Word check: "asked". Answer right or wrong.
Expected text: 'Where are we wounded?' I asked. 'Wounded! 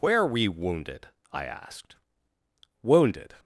right